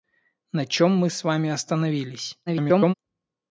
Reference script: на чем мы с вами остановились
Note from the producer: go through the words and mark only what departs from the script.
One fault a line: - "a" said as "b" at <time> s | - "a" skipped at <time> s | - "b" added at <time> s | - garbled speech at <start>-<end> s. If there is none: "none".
- garbled speech at 2.5-2.9 s